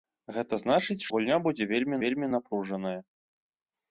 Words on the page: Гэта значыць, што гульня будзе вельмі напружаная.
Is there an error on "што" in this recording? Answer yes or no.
yes